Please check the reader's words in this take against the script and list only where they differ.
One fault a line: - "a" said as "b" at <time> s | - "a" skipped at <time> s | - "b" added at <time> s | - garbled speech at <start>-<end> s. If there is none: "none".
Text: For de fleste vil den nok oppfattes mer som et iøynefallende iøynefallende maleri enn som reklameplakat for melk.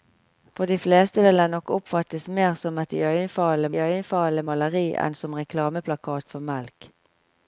none